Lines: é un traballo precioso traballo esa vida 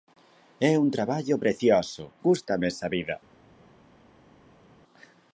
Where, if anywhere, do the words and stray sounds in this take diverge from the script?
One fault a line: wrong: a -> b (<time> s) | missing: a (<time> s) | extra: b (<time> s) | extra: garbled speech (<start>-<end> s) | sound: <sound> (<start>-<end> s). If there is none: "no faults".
wrong: traballo -> gústame (2.2 s)